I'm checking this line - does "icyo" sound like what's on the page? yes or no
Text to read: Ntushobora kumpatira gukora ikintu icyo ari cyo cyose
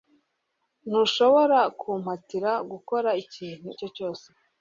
no